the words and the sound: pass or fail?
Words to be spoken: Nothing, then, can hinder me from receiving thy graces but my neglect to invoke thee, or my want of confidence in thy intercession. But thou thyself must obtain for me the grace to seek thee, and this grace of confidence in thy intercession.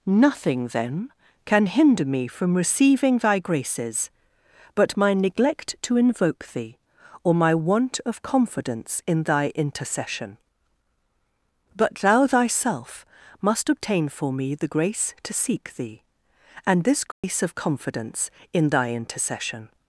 fail